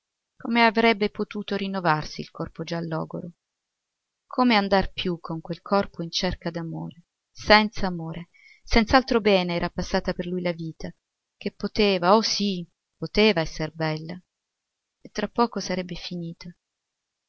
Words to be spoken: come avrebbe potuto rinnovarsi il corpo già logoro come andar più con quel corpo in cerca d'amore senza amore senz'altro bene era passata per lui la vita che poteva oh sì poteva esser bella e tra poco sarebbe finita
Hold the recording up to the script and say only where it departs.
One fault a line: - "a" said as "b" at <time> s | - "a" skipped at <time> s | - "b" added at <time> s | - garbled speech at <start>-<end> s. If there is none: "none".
none